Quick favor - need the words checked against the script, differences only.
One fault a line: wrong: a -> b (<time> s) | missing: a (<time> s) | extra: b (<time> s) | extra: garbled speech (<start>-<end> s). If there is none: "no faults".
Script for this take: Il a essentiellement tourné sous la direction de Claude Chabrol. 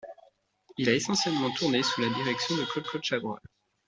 extra: Claude (2.8 s)